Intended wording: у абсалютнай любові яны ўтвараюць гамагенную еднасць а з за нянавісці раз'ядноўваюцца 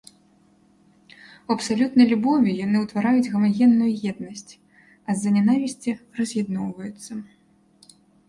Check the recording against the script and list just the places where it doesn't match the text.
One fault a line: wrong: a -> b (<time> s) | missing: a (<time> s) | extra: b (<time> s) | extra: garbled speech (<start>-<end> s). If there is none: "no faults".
no faults